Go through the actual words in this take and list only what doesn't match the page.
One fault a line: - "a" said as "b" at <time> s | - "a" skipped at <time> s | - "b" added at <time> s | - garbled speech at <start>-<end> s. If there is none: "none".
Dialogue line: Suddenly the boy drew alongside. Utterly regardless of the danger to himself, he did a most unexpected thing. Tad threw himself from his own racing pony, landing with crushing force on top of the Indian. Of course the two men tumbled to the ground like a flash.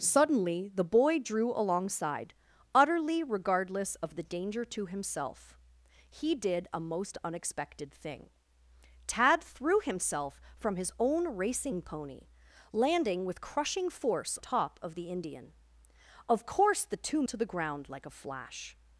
- "on" skipped at 14.4 s
- "men tumbled" skipped at 17.2 s